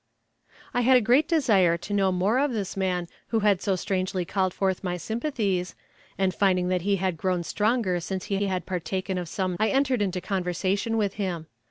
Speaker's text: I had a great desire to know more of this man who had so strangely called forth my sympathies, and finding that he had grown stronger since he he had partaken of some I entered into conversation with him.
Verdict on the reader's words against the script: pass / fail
pass